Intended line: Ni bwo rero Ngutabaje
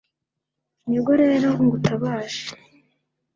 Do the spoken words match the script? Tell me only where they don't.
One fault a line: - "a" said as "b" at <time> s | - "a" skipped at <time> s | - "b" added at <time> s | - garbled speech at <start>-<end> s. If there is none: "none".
none